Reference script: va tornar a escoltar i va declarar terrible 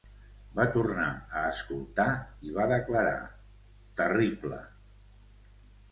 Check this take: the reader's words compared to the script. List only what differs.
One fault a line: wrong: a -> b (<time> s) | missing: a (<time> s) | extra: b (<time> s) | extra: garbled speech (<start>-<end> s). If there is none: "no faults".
no faults